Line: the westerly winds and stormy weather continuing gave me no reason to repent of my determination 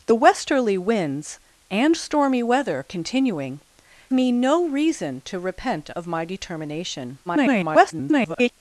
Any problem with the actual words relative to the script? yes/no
yes